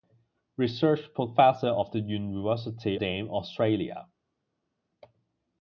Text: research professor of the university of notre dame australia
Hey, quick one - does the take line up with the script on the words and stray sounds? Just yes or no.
no